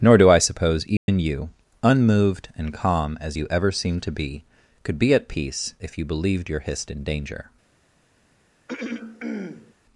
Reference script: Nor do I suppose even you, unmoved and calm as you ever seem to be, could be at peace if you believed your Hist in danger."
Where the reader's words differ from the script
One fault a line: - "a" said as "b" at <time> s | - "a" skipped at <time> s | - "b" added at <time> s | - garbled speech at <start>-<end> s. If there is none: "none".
none